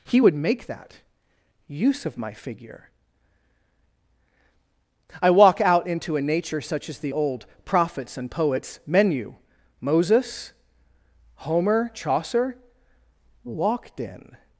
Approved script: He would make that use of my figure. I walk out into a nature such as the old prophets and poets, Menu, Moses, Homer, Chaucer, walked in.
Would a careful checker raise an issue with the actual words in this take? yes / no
no